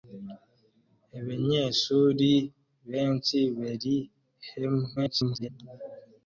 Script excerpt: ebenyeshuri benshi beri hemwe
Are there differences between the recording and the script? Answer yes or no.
yes